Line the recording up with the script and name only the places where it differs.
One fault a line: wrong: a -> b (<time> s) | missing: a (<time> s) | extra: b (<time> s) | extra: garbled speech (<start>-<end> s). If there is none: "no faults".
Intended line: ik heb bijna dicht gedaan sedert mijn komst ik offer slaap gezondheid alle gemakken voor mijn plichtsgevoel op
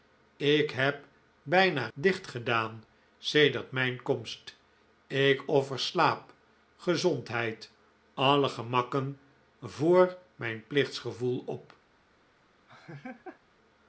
no faults